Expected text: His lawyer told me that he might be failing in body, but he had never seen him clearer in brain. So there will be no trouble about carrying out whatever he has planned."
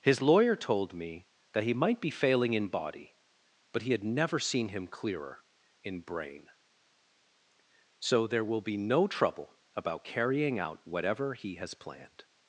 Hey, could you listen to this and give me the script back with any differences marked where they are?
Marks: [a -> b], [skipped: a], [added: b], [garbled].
His lawyer told me that he might be failing in body, but he had never seen him clearer in brain. So there will be no trouble about carrying out whatever he has planned."